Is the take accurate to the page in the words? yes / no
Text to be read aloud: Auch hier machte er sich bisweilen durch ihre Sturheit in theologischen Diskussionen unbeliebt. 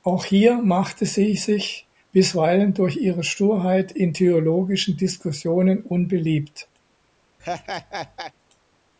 no